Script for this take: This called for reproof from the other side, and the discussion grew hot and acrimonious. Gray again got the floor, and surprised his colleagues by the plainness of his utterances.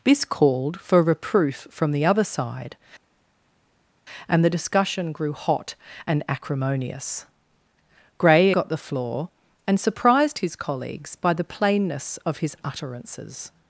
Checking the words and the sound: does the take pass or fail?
fail